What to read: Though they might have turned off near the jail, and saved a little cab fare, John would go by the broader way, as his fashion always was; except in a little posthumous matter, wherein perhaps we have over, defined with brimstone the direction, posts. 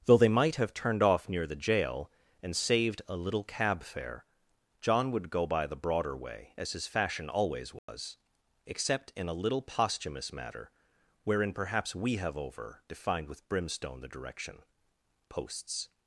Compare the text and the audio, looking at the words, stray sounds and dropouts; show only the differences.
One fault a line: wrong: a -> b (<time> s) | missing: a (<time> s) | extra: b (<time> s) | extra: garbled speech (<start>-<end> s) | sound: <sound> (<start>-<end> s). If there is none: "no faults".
sound: dropout (7.8-7.9 s)